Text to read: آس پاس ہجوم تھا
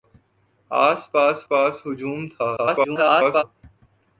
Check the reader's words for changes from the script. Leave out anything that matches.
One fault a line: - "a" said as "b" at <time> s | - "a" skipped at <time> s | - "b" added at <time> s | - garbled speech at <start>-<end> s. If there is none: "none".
- "پاس" added at 1.5 s
- garbled speech at 2.5-3.4 s